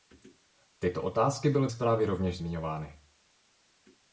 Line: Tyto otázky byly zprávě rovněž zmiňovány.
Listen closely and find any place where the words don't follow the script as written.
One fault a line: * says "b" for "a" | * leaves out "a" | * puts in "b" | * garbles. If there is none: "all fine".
all fine